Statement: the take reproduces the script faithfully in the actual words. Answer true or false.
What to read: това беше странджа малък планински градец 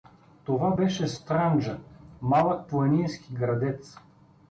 true